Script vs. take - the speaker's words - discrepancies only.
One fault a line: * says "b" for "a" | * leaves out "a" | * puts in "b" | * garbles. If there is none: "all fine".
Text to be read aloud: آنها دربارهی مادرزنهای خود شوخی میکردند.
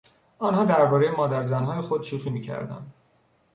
all fine